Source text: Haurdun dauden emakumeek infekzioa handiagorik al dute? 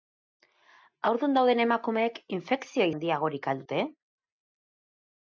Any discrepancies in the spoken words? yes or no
no